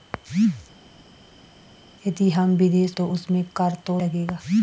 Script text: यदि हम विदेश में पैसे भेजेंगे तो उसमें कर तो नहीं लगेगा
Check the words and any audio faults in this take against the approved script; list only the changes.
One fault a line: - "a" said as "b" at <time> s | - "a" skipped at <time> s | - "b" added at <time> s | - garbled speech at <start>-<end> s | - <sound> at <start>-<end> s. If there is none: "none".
- "में पैसे भेजेंगे" skipped at 3.0 s
- "नहीं" skipped at 4.0 s